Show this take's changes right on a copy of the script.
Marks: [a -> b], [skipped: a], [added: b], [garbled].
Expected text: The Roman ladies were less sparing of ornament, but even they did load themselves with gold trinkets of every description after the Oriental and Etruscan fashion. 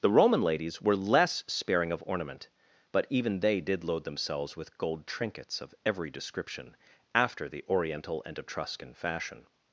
The Roman ladies were less sparing of ornament, but even they did load themselves with gold trinkets of every description after the Oriental and Etruscan fashion.